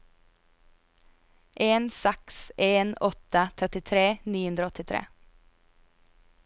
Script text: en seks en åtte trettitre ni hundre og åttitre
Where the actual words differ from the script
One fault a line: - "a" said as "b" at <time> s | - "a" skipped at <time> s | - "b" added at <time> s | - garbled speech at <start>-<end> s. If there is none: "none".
none